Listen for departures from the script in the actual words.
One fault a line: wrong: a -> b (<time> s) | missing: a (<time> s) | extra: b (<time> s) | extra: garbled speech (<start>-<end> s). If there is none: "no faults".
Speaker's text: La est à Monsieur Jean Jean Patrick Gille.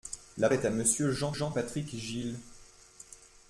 no faults